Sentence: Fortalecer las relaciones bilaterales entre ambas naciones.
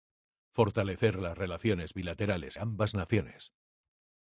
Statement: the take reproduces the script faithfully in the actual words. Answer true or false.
false